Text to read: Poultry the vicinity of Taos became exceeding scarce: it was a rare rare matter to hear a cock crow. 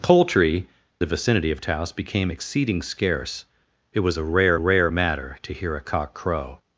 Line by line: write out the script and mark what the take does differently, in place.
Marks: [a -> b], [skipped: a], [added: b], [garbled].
Poultry the vicinity of Taos became exceeding scarce: it was a rare rare matter to hear a cock crow.